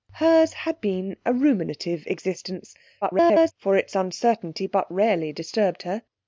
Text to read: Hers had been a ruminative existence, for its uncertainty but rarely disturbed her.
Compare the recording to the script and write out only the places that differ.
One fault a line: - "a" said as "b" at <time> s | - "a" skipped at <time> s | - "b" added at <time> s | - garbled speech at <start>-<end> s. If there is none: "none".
- garbled speech at 3.0-3.5 s